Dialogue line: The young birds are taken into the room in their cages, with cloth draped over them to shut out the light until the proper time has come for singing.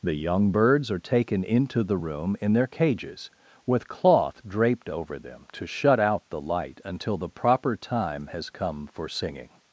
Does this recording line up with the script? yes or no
yes